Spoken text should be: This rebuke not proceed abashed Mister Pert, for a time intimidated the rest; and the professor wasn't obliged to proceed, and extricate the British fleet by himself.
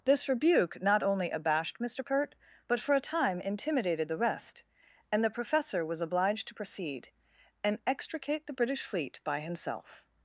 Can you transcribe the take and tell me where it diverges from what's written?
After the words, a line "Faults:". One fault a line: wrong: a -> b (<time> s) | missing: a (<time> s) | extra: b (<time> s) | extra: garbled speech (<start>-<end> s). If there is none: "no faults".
This rebuke not only abashed Mister Pert, but for a time intimidated the rest; and the professor was obliged to proceed, and extricate the British fleet by himself.
Faults:
wrong: proceed -> only (1.0 s)
extra: but (2.7 s)
wrong: wasn't -> was (5.9 s)